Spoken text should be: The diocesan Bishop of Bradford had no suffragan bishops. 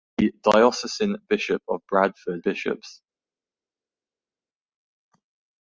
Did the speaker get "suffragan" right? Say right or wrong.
wrong